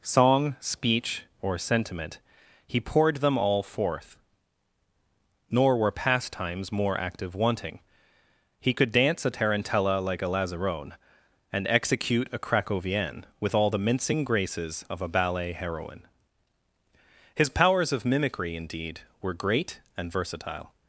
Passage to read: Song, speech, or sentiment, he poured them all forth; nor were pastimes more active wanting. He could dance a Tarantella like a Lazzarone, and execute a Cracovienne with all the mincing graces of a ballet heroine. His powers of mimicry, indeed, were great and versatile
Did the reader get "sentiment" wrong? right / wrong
right